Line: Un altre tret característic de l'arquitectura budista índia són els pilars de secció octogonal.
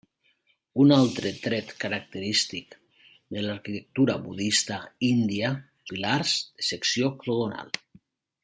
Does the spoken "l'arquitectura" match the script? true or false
true